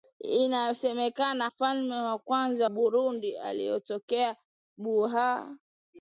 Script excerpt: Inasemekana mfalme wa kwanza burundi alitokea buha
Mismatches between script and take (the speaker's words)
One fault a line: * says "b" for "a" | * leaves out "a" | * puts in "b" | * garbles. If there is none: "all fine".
all fine